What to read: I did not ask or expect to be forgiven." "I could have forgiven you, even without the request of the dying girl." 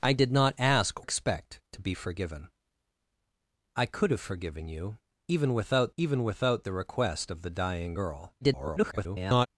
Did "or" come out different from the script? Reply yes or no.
yes